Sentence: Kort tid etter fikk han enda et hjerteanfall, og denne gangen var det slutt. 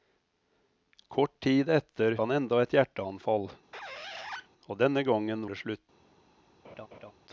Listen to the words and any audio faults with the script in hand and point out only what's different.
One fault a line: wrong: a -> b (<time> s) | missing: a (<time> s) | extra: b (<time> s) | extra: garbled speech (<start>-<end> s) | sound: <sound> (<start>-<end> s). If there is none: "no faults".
missing: fikk (2.1 s)
sound: squeak (3.7-4.5 s)
missing: var (5.4 s)
sound: laugh (6.6-7.1 s)